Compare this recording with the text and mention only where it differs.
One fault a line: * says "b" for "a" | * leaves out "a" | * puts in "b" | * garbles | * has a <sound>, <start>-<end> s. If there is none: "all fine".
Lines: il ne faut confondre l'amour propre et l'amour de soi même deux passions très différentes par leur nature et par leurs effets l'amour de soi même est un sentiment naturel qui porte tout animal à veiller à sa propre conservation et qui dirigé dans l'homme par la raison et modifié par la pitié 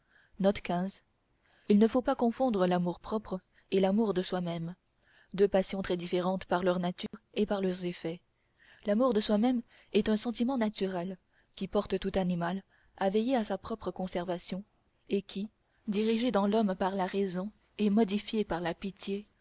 * puts in "pas"
* has a dropout, 7.1-7.1 s